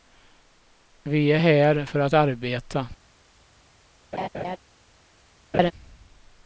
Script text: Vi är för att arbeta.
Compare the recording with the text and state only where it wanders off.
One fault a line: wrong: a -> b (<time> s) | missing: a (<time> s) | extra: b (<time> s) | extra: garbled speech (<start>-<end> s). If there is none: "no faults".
extra: här (1.3 s)